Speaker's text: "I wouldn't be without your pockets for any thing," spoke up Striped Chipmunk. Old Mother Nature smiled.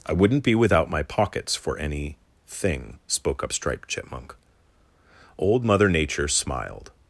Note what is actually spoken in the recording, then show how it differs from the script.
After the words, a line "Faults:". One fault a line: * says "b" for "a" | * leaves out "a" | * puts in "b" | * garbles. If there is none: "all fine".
"I wouldn't be without my pockets for any thing," spoke up Striped Chipmunk. Old Mother Nature smiled.
Faults:
* says "my" for "your"